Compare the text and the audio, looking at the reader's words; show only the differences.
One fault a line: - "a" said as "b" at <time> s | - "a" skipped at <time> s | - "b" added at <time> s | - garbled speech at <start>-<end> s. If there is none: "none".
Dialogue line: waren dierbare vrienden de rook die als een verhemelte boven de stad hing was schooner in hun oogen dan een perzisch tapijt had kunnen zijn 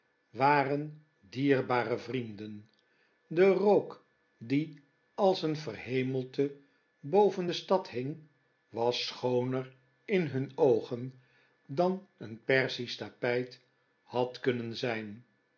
none